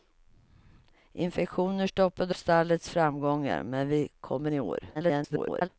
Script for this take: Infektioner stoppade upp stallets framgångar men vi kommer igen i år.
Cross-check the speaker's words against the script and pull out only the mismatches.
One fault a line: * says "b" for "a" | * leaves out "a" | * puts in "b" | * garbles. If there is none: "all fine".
* leaves out "upp"
* leaves out "igen"
* garbles